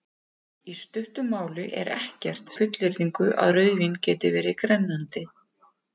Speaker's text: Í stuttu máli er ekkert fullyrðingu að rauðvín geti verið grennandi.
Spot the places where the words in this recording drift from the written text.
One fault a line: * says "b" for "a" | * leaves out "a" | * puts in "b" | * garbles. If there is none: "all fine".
all fine